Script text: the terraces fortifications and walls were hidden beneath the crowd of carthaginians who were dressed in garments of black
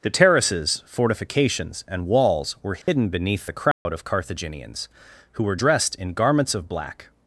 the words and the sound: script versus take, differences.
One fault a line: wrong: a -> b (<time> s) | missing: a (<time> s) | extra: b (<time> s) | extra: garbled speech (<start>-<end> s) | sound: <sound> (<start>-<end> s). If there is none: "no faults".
sound: dropout (2.8-2.9 s)
sound: dropout (3.7-3.9 s)